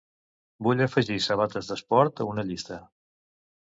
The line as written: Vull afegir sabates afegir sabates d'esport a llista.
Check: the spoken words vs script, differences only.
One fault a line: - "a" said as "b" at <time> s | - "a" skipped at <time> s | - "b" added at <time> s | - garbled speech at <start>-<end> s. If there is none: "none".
- "afegir sabates" skipped at 1.7 s
- "una" added at 2.4 s